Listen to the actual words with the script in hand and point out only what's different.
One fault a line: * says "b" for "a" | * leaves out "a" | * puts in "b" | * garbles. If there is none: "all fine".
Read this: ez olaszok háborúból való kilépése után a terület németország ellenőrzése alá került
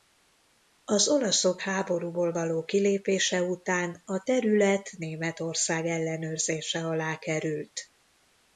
* says "az" for "ez"